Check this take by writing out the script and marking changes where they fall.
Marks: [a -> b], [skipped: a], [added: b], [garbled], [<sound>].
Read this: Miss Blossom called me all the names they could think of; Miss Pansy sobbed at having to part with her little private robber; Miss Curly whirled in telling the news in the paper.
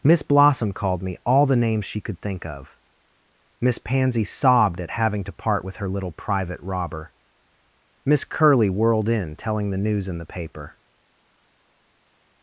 Miss Blossom called me all the names [they -> she] could think of; Miss Pansy sobbed at having to part with her little private robber; Miss Curly whirled in telling the news in the paper.